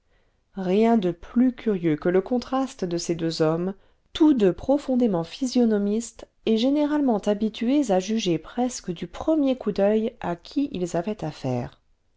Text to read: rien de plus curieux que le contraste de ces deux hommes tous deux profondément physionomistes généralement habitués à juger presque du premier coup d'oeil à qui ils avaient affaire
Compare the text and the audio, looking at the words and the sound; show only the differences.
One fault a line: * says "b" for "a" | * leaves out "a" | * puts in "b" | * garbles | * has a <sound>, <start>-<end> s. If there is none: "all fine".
* puts in "et"